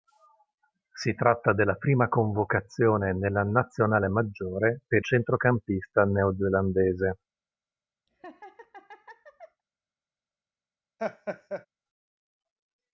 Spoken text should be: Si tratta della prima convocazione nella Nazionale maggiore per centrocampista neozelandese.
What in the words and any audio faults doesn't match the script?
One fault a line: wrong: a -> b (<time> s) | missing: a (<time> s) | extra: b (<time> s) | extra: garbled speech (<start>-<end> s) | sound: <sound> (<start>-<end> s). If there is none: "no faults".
sound: laugh (8.1-9.6 s)
sound: laugh (11.0-11.7 s)